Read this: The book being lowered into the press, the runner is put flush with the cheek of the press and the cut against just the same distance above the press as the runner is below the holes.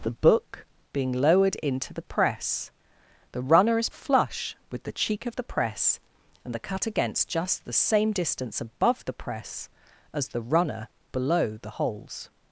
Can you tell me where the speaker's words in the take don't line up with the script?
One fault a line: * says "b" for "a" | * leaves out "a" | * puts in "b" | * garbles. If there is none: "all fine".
* leaves out "put"
* leaves out "is"